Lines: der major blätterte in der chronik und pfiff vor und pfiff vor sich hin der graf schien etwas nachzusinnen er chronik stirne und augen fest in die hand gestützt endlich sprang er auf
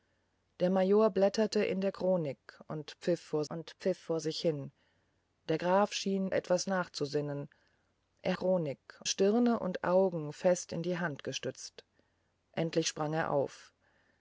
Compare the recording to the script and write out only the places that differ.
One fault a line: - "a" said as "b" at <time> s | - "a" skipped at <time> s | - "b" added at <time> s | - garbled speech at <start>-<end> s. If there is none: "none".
none